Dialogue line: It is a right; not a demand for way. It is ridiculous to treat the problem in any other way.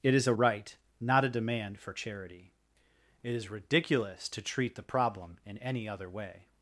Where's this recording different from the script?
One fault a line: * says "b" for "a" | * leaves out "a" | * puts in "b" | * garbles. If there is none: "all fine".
* says "charity" for "way"